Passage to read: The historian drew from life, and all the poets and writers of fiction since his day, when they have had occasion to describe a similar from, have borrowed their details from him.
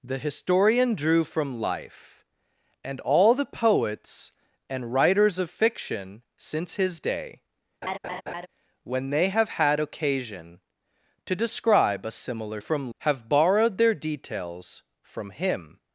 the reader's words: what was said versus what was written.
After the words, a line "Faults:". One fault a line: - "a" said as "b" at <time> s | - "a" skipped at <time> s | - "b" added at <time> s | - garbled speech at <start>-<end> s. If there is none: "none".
The historian drew from life, and all the poets and writers of fiction since his day, when they have had occasion to describe a similar from, have borrowed their details from him.
Faults:
none